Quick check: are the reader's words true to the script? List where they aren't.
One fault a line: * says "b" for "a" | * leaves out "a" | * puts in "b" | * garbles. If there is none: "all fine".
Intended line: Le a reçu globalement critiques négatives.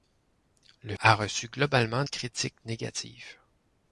all fine